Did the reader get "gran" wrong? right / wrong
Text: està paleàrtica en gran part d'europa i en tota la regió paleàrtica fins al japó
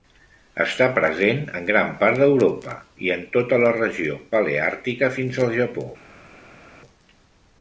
right